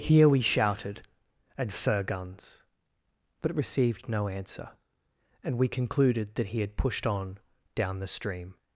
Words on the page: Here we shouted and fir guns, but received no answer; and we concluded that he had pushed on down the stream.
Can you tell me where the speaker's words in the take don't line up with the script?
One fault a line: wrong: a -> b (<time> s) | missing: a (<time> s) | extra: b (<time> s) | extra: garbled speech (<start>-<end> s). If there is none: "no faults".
no faults